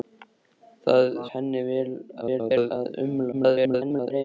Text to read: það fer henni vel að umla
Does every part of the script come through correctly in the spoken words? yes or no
no